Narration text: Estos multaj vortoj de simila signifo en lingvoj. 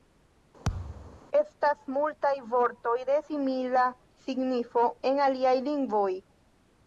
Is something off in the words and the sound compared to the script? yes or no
yes